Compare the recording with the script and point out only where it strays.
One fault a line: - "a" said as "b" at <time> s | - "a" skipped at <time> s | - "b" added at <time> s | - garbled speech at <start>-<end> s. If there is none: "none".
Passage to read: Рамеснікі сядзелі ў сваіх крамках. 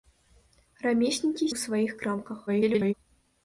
- "сядзелі" skipped at 1.5 s
- garbled speech at 2.5-2.9 s